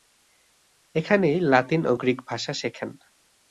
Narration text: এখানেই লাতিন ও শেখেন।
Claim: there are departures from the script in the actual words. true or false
true